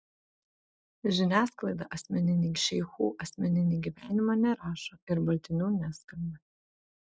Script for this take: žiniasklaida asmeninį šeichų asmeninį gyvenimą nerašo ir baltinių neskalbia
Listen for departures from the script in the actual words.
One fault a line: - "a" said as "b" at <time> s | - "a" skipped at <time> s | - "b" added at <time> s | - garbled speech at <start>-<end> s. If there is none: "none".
none